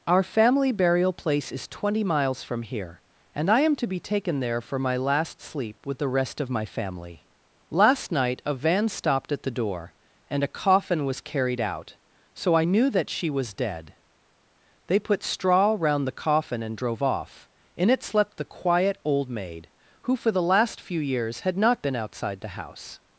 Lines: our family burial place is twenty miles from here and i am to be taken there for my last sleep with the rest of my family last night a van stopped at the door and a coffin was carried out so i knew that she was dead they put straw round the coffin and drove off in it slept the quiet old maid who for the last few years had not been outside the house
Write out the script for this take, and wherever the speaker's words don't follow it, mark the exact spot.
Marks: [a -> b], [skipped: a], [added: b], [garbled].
our family burial place is twenty miles from here and i am to be taken there for my last sleep with the rest of my family last night a van stopped at the door and a coffin was carried out so i knew that she was dead they put straw round the coffin and drove off in it slept the quiet old maid who for the last few years had not been outside the house